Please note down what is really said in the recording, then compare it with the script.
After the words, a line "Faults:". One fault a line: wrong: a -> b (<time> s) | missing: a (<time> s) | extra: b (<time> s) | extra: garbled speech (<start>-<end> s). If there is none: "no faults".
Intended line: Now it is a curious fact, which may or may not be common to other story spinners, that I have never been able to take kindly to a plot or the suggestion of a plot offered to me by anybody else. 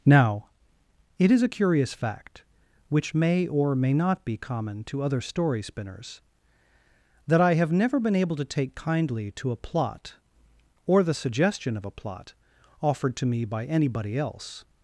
Now it is a curious fact, which may or may not be common to other story spinners, that I have never been able to take kindly to a plot or the suggestion of a plot offered to me by anybody else.
Faults:
no faults